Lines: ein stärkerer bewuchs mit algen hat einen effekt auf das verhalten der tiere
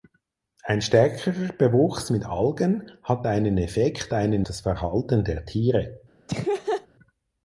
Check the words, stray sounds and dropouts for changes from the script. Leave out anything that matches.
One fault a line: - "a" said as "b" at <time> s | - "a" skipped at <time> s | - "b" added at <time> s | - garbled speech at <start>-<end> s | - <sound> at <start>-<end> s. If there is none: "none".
- "auf" said as "einen" at 4.1 s
- laugh at 6.3-6.9 s